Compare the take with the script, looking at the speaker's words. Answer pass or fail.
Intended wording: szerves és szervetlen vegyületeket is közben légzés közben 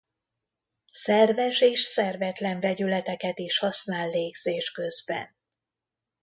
fail